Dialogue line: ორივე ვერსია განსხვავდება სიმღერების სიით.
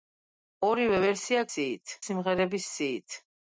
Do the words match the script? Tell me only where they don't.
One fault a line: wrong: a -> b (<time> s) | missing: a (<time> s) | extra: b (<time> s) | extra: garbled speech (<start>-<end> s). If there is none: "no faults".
wrong: განსხვავდება -> სიით (1.5 s)